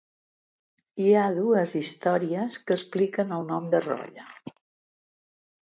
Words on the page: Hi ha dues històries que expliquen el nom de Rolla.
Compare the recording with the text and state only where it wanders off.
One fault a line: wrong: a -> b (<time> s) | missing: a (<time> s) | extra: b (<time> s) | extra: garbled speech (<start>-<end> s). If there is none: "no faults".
no faults